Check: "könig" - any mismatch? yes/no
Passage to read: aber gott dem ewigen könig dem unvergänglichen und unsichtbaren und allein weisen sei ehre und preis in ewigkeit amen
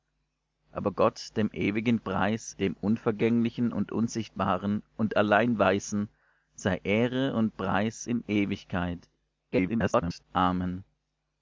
yes